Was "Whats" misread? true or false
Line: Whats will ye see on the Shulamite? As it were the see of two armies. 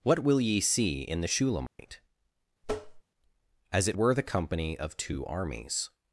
true